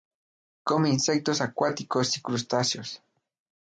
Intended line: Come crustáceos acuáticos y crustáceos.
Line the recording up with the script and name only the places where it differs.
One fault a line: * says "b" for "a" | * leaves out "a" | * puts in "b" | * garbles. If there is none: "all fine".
* says "insectos" for "crustáceos"